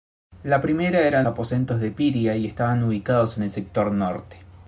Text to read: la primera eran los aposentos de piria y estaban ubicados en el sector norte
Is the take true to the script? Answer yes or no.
no